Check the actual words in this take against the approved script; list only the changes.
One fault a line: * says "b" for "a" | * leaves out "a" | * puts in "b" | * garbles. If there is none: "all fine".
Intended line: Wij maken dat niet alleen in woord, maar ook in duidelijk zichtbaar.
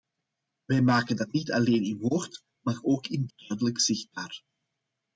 all fine